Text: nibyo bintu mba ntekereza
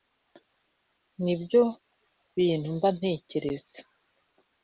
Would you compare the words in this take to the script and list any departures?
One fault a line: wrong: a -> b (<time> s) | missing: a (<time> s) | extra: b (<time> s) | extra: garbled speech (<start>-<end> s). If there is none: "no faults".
no faults